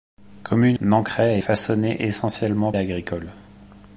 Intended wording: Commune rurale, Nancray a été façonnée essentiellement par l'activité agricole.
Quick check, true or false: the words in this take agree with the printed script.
false